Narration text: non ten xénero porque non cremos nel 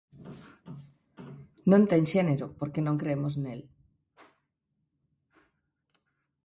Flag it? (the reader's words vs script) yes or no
no